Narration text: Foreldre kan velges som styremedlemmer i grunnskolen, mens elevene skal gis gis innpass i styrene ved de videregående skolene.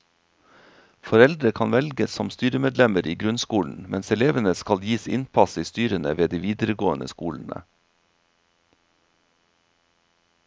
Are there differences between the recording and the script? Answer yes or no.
yes